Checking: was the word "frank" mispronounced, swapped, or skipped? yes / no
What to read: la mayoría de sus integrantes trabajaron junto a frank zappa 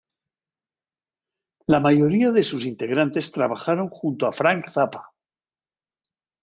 no